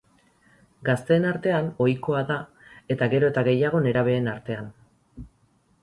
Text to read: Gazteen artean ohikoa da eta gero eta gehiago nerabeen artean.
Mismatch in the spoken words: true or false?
false